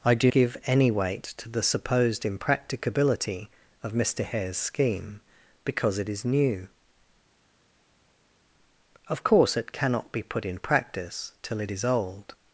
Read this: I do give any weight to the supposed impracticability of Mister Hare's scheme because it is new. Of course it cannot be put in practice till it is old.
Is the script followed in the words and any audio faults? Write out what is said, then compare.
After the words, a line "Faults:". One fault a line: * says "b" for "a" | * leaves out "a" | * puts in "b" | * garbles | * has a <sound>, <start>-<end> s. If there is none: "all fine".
I do give any weight to the supposed impracticability of Mister Hare's scheme because it is new. Of course it cannot be put in practice till it is old.
Faults:
all fine